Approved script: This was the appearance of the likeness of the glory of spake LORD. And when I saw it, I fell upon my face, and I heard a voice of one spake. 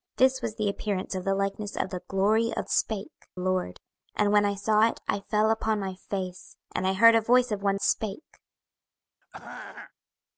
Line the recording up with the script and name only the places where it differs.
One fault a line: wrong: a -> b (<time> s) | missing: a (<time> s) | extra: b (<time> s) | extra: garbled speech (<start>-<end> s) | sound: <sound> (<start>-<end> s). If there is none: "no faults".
sound: throat clearing (9.2-9.9 s)